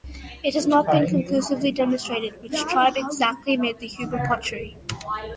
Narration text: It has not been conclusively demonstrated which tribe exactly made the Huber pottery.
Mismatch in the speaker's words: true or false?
false